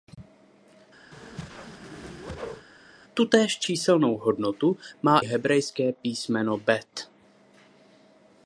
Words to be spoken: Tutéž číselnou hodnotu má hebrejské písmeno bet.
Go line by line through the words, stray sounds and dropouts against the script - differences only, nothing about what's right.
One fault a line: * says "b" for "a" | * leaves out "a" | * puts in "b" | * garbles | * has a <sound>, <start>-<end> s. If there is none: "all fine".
* has a whoosh, 1.1-2.7 s